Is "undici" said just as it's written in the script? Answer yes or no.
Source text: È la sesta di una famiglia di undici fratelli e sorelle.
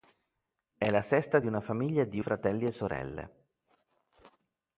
no